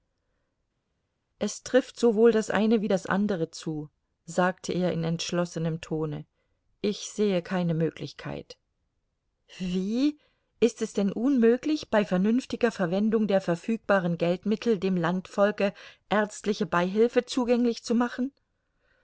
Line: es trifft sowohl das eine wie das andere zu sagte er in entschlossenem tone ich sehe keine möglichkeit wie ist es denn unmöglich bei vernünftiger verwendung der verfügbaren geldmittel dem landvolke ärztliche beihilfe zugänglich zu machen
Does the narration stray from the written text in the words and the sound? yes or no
no